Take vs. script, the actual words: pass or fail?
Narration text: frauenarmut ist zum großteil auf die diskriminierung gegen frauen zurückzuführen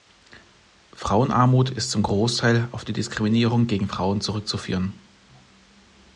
pass